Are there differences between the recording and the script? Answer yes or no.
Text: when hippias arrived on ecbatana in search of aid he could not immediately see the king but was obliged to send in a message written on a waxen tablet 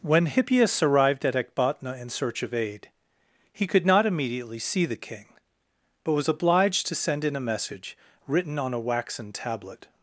yes